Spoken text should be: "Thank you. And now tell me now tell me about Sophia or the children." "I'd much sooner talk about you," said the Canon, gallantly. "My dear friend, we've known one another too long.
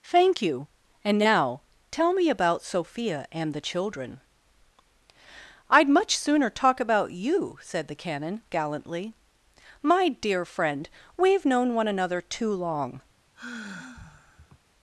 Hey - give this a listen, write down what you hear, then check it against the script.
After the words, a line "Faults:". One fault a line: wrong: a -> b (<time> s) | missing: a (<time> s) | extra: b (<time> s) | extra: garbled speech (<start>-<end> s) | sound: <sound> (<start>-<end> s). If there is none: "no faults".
"Thank you. And now tell me about Sophia and the children." "I'd much sooner talk about you," said the Canon, gallantly. "My dear friend, we've known one another too long.
Faults:
missing: now tell me (2.3 s)
wrong: or -> and (3.3 s)
sound: sigh (13.3-14.6 s)